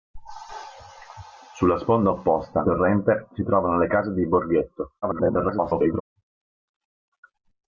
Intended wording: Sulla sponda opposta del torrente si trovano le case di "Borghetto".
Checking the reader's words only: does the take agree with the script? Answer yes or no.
no